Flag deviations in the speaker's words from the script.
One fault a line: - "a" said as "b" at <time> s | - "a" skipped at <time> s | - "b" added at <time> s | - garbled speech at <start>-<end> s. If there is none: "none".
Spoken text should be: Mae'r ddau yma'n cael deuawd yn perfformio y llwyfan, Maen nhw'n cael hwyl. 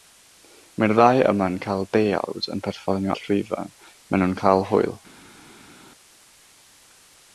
none